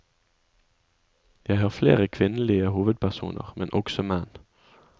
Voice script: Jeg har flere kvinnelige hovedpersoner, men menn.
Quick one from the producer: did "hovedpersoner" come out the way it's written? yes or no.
yes